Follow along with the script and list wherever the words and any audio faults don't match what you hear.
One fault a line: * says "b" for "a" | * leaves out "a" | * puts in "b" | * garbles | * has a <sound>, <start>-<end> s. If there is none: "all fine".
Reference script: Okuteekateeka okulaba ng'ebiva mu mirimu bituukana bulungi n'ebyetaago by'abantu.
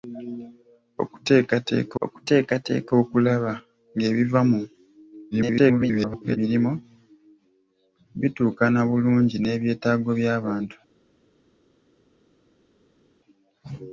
* puts in "okuteekateeka"
* garbles